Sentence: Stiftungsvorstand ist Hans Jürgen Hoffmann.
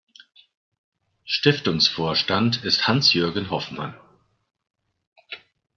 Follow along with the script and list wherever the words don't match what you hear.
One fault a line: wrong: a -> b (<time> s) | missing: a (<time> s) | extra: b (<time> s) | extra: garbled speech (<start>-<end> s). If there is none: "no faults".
no faults